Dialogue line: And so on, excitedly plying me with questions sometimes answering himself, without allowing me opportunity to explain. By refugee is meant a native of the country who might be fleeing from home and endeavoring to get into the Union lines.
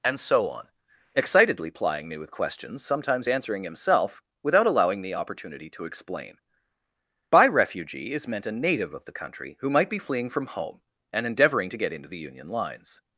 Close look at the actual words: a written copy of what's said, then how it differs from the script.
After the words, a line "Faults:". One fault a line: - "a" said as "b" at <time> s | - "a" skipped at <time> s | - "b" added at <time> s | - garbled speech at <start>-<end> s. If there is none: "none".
And so on, excitedly plying me with questions sometimes answering himself, without allowing the opportunity to explain. By refugee is meant a native of the country who might be fleeing from home and endeavoring to get into the Union lines.
Faults:
- "me" said as "the" at 5.0 s